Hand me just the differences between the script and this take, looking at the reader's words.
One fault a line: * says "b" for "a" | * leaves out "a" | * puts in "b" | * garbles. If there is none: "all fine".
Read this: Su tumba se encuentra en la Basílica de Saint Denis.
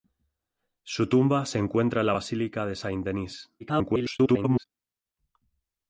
* garbles